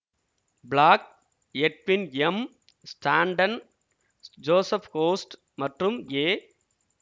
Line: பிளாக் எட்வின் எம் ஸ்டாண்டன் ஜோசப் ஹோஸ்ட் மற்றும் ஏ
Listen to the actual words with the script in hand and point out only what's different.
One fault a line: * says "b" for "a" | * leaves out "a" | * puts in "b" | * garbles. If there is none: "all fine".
all fine